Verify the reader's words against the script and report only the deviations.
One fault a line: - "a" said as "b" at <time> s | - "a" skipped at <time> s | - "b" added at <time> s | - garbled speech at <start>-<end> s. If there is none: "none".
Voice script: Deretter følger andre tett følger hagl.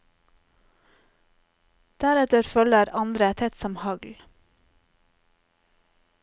- "følger" said as "som" at 3.6 s